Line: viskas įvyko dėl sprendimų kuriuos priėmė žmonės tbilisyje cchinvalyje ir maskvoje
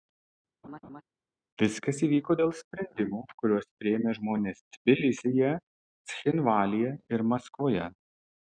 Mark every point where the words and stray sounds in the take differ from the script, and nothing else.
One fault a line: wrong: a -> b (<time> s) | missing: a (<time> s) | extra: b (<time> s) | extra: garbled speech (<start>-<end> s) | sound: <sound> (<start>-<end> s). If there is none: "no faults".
sound: laugh (0.6-1.0 s)